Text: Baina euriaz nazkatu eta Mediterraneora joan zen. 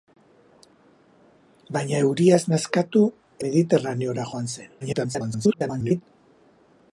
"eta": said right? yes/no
no